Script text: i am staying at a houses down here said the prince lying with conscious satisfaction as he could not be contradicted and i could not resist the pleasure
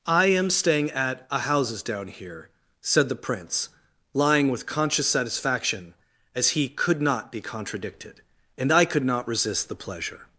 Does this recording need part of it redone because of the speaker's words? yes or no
no